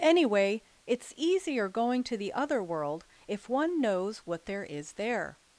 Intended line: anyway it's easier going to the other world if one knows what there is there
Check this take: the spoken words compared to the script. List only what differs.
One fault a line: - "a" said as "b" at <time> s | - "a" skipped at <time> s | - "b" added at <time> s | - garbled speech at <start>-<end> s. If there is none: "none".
none